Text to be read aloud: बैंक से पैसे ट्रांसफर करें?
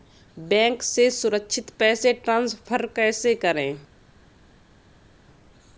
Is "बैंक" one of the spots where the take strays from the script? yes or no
no